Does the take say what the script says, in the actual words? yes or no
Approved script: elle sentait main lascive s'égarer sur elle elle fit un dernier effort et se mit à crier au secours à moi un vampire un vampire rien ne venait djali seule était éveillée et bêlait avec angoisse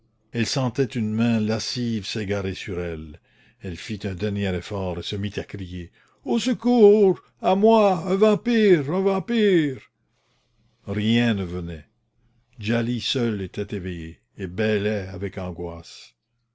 no